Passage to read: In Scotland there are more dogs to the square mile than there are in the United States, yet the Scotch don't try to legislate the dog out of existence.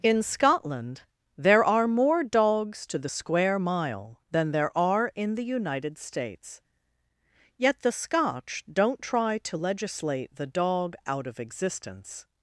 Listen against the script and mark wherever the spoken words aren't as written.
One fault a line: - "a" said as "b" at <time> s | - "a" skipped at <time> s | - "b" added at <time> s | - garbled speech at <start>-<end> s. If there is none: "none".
none